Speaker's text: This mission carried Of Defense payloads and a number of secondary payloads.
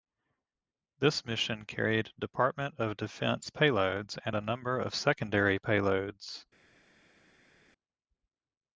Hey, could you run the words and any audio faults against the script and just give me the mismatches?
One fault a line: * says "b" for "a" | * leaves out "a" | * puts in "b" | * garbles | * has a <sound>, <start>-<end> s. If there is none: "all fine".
* puts in "Department"